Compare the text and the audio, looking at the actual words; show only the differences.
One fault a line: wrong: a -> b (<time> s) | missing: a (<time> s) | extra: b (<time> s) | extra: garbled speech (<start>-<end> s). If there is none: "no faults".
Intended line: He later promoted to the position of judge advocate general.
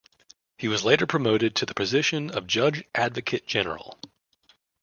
extra: was (0.7 s)